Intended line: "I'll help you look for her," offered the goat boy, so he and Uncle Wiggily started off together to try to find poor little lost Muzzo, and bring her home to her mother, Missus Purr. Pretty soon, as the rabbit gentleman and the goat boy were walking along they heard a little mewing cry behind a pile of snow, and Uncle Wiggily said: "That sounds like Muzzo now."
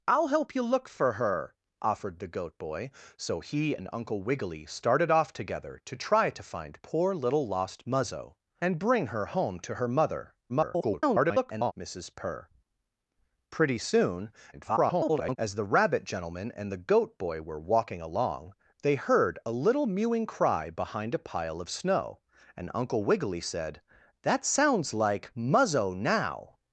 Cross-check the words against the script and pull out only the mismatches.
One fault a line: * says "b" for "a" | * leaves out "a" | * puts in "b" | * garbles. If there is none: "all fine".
* garbles
* garbles